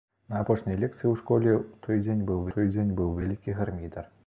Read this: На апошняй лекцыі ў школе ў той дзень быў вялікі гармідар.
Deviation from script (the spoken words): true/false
true